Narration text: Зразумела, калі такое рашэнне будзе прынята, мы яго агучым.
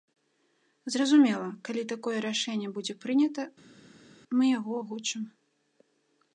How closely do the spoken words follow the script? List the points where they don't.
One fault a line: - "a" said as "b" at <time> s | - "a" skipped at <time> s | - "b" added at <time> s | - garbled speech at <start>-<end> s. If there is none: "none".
none